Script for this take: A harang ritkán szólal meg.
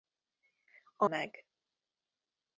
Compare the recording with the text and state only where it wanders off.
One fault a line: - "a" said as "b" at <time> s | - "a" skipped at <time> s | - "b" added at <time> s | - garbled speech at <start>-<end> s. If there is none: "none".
- "harang ritkán szólal" skipped at 1.1 s